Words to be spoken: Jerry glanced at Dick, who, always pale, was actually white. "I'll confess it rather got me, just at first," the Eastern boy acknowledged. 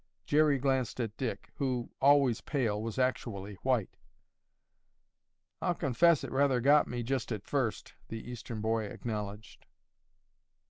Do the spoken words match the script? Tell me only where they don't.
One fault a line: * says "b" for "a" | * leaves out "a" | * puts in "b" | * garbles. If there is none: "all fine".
all fine